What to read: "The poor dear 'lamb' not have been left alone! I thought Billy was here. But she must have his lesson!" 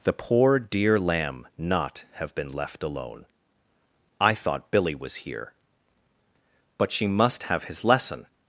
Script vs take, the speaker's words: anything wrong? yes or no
no